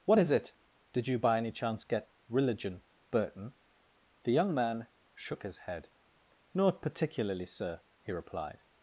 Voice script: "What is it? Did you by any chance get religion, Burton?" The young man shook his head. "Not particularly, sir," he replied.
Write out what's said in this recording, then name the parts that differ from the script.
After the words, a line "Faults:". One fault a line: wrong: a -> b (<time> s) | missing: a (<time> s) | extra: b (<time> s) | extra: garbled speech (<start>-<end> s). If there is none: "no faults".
"What is it? Did you by any chance get religion, Burton?" The young man shook his head. "Not particularly, sir," he replied.
Faults:
no faults